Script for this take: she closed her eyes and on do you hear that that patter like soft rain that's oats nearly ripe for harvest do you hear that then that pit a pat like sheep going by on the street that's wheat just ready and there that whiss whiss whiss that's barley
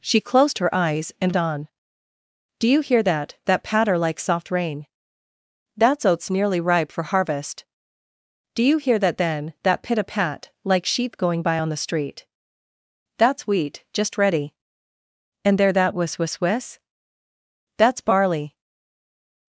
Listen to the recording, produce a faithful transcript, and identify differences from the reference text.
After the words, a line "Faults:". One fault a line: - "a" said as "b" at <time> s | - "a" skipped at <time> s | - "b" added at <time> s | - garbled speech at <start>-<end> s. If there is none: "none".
she closed her eyes and on do you hear that that patter like soft rain that's oats nearly ripe for harvest do you hear that then that pit a pat like sheep going by on the street that's wheat just ready and there that whiss whiss whiss that's barley
Faults:
none